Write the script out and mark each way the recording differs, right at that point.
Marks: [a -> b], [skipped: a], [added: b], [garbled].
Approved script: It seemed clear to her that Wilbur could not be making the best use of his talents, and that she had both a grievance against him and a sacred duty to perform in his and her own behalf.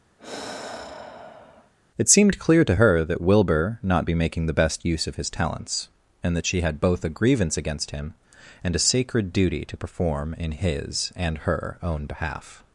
It seemed clear to her that Wilbur [skipped: could] not be making the best use of his talents, and that she had both a grievance against him and a sacred duty to perform in his and her own behalf.